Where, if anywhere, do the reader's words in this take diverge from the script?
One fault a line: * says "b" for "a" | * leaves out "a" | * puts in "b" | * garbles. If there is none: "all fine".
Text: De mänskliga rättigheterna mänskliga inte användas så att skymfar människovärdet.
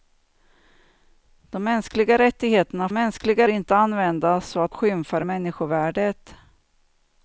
all fine